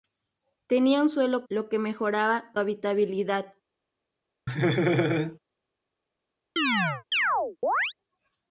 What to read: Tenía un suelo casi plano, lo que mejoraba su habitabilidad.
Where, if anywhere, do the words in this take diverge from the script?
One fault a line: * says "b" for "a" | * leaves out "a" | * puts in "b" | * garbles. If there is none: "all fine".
* leaves out "casi plano"
* leaves out "su"